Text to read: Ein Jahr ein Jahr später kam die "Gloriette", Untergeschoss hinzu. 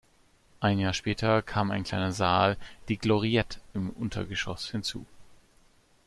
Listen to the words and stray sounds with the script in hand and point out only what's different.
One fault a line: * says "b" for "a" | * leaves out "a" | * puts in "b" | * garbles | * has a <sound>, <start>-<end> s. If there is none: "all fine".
* puts in "später kam"
* says "kleiner Saal" for "Jahr später kam"
* puts in "im"